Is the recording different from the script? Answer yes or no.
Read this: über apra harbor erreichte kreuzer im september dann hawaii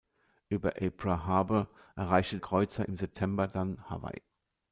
no